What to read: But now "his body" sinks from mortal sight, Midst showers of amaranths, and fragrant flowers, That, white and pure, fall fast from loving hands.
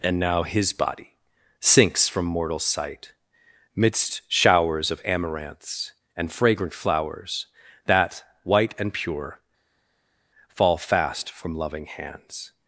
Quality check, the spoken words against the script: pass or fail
fail